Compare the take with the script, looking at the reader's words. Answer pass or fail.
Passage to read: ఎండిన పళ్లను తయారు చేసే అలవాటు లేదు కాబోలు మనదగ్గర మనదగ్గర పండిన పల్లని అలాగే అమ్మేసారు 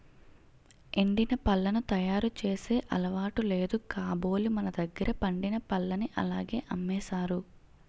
fail